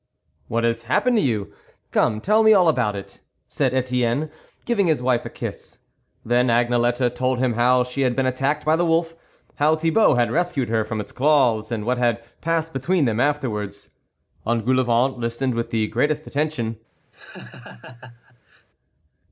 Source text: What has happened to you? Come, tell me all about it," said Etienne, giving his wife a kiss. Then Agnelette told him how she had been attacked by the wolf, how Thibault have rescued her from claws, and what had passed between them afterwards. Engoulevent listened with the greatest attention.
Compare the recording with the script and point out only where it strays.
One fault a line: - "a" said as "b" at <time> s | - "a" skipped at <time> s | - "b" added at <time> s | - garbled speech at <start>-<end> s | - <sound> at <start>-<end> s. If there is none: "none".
- "have" said as "had" at 10.1 s
- "its" added at 11.0 s
- laugh at 17.1-18.7 s